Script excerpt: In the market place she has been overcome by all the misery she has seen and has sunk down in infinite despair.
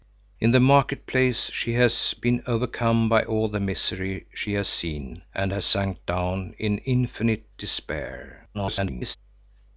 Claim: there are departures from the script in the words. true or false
true